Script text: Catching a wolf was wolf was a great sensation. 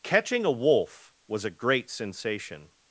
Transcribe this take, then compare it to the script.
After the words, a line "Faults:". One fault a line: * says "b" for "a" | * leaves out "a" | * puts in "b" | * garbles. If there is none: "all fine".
Catching a wolf was a great sensation.
Faults:
* leaves out "wolf was"